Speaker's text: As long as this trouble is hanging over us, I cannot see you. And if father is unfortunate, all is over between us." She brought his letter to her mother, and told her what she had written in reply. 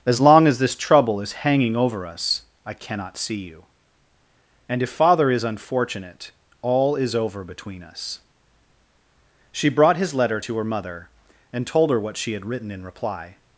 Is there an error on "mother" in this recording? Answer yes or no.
no